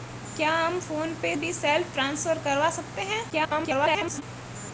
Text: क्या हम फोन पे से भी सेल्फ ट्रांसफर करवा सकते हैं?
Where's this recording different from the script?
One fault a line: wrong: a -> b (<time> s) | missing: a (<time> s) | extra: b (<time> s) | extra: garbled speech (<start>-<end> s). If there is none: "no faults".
missing: से (1.4 s)
extra: garbled speech (3.3-4.2 s)